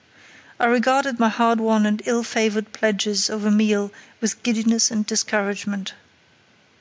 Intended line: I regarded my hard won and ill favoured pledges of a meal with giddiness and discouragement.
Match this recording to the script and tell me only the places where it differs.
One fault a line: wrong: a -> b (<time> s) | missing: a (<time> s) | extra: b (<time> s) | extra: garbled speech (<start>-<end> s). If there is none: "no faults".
no faults